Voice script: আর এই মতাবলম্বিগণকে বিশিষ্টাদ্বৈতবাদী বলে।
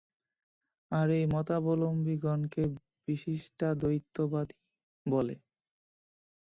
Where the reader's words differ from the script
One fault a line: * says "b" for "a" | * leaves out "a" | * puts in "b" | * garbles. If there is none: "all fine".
all fine